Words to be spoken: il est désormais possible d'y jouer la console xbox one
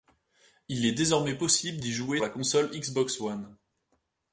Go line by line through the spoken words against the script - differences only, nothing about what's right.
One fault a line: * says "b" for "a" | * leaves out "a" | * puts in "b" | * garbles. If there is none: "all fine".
all fine